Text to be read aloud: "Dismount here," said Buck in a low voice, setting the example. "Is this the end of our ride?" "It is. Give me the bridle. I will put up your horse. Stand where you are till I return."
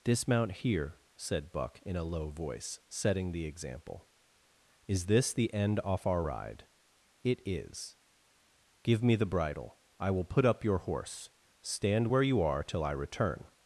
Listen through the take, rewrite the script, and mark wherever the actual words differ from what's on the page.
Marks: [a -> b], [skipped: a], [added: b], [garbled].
"Dismount here," said Buck in a low voice, setting the example. "Is this the end [of -> off] our ride?" "It is. Give me the bridle. I will put up your horse. Stand where you are till I return."